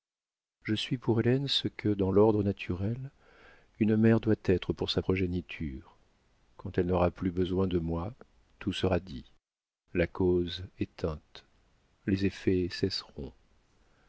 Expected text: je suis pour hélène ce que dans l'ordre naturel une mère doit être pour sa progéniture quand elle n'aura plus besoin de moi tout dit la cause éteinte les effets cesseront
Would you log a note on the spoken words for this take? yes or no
yes